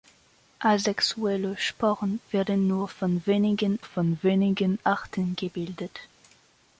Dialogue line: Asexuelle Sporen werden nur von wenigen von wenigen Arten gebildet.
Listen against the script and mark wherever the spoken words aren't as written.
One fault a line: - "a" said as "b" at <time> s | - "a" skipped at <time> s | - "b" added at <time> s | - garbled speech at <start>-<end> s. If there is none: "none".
none